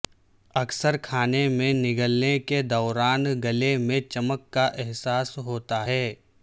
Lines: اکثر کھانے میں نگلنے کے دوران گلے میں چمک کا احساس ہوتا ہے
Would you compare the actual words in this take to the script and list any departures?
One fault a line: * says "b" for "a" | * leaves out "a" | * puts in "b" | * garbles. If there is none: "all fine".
all fine